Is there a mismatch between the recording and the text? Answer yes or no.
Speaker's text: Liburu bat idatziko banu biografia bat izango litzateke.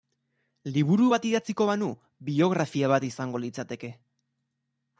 no